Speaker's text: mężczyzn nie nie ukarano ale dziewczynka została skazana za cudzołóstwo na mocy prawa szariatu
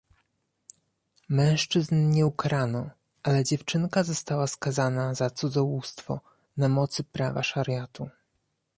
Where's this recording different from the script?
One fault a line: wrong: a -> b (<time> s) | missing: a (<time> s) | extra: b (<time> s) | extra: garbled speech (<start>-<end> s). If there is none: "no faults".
missing: nie (2.2 s)